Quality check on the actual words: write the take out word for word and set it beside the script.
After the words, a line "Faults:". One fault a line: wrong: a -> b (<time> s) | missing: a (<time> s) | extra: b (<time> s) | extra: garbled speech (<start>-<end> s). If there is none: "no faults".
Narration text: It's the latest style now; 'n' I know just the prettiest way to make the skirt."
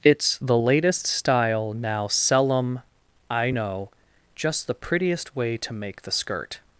It's the latest style now; 'sell em' I know just the prettiest way to make the skirt."
Faults:
wrong: n -> sell em (2.1 s)